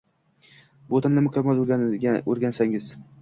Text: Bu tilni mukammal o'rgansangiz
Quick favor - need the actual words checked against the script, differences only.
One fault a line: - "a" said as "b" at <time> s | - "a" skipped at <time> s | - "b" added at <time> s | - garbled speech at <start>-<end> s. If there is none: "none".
none